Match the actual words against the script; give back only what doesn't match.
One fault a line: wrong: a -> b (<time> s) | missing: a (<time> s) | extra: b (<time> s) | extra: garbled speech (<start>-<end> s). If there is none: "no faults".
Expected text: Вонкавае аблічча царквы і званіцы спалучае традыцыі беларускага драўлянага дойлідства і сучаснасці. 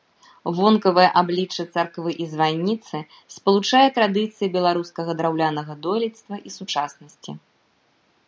no faults